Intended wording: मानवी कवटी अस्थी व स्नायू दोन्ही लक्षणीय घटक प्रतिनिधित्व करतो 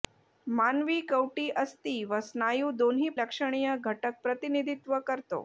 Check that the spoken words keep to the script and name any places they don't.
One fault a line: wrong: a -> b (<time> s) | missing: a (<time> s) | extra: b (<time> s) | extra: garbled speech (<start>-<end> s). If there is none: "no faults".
no faults